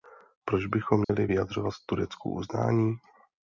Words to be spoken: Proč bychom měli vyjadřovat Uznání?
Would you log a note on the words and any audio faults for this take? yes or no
yes